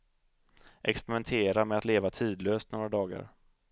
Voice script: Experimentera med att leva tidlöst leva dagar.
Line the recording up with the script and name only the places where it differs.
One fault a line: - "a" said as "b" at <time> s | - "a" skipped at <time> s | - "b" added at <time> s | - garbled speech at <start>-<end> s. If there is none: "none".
- "leva" said as "några" at 2.7 s